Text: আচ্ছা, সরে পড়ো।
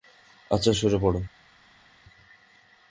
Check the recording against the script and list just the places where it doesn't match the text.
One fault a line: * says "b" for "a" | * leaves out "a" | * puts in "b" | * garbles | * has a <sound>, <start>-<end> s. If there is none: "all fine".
all fine